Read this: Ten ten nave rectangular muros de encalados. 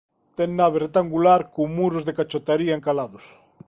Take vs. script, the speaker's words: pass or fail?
fail